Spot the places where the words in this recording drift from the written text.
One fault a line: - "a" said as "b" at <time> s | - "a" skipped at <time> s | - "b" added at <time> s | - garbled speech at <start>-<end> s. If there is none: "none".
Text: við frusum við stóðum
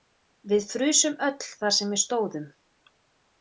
- "öll þar sem" added at 1.3 s